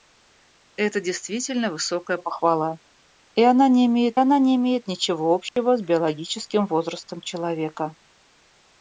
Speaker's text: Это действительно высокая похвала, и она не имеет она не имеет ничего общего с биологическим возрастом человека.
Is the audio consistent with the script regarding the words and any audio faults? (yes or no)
no